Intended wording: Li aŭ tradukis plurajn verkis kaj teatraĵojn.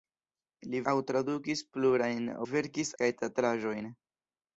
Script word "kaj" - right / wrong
right